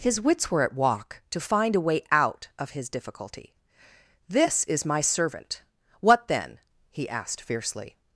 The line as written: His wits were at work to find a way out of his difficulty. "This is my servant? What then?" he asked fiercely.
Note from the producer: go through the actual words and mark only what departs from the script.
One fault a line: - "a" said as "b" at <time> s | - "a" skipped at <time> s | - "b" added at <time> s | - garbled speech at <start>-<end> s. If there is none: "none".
- "work" said as "walk" at 0.7 s